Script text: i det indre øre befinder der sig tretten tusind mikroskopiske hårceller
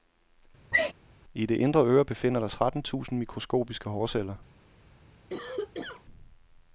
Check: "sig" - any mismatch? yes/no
yes